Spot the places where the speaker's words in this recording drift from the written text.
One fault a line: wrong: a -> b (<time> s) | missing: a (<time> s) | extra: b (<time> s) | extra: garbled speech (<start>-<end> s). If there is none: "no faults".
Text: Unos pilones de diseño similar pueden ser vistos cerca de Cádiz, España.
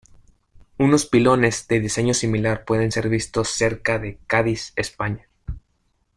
no faults